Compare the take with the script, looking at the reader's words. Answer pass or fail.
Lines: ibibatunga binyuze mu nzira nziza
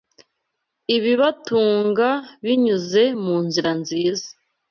pass